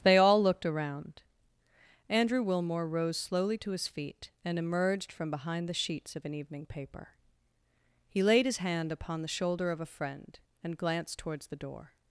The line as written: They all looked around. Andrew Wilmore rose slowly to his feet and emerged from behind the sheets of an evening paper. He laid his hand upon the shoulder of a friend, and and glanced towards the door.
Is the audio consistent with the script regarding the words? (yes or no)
no